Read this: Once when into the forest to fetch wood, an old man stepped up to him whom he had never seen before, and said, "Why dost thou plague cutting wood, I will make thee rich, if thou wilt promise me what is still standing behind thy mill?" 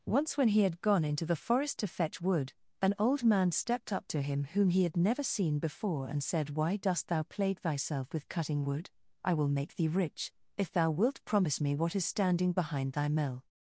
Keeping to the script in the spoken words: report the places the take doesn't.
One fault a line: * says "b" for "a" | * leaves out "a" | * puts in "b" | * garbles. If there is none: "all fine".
* puts in "he had gone"
* puts in "thyself with"
* leaves out "still"